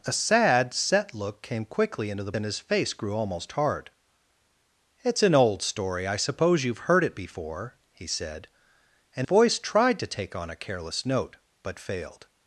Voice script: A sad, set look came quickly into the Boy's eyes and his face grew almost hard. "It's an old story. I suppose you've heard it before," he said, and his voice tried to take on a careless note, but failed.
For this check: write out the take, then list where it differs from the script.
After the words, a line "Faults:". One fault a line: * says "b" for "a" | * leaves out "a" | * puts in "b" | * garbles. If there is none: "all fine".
A sad, set look came quickly into the And his face grew almost hard. "It's an old story. I suppose you've heard it before," he said, and voice tried to take on a careless note, but failed.
Faults:
* leaves out "Boy's eyes"
* leaves out "his"